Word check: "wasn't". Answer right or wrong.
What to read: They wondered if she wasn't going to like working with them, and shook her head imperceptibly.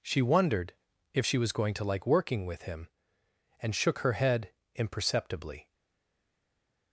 wrong